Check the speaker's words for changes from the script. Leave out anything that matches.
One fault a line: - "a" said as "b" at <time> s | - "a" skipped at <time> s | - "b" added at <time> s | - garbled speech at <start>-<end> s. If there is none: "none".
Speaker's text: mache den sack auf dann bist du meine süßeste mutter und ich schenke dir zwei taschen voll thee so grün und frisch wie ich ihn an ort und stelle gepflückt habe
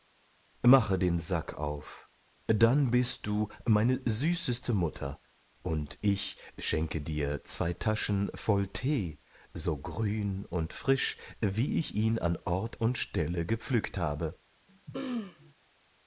none